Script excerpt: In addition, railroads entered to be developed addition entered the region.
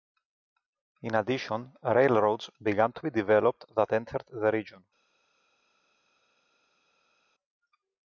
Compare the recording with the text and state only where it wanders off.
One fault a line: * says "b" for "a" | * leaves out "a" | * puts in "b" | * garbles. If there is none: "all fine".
* says "began" for "entered"
* says "that" for "addition"